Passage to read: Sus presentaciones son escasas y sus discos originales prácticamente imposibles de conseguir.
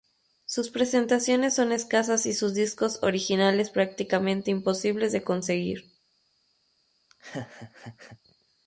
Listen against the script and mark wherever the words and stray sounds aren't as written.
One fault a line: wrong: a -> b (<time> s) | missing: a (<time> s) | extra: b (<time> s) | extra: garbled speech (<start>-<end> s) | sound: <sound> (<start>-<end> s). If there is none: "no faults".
sound: laugh (7.1-8.2 s)